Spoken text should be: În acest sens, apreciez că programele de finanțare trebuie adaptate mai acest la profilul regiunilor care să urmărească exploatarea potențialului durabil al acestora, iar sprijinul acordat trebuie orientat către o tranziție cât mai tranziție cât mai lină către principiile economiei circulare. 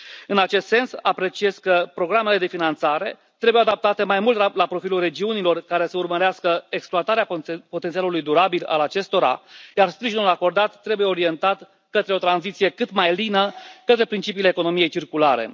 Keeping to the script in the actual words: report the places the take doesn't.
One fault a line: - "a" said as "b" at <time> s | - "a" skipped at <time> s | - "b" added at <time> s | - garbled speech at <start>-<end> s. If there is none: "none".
- "acest" said as "mult" at 4.2 s
- "tranziție cât mai" skipped at 13.1 s